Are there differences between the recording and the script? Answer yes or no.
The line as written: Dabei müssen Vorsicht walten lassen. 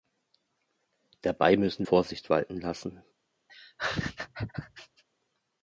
no